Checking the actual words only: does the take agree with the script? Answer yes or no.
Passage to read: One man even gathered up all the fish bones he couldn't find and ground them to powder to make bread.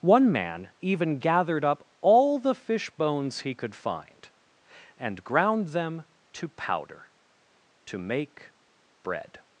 no